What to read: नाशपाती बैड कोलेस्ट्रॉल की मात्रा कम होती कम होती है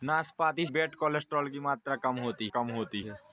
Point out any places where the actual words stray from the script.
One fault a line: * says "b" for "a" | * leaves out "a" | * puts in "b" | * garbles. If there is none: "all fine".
all fine